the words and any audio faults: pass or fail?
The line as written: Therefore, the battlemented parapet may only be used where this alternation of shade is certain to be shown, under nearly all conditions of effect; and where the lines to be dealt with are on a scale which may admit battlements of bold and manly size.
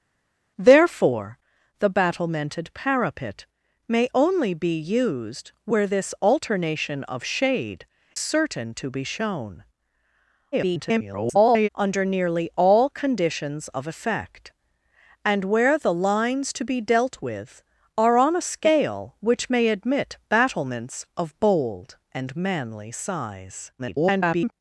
fail